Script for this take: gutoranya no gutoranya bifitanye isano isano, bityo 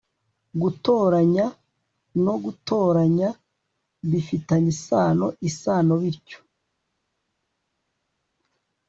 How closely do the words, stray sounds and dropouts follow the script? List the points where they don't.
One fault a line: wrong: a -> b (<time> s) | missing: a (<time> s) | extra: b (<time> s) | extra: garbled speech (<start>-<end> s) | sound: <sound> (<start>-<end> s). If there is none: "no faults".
no faults